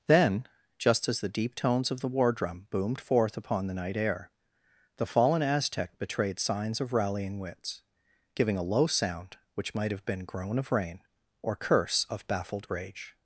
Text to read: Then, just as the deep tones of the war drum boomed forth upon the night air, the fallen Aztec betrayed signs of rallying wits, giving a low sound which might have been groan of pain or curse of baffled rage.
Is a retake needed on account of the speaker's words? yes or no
yes